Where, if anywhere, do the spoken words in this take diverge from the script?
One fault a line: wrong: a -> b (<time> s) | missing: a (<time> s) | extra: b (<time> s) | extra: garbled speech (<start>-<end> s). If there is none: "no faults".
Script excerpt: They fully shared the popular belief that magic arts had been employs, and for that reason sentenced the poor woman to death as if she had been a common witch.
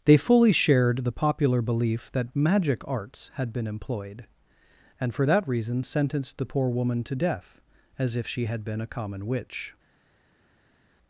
wrong: employs -> employed (3.7 s)